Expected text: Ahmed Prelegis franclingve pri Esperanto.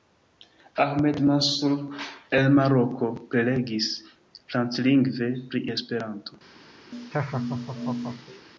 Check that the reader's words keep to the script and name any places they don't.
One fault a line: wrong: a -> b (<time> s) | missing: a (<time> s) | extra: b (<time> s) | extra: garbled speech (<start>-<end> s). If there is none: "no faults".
extra: Mansur el Maroko (1.3 s)